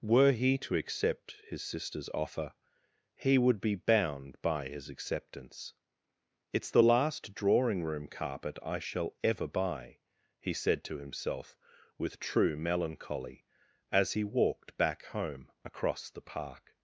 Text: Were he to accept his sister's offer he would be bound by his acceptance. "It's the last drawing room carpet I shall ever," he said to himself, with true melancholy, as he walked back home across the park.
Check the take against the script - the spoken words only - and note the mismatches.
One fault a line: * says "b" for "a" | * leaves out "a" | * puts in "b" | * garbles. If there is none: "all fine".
* puts in "buy"